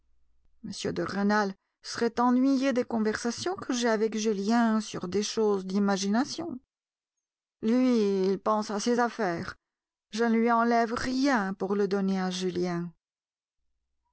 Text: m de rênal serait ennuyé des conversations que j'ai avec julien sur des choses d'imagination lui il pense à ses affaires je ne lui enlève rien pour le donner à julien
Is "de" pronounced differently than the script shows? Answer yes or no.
no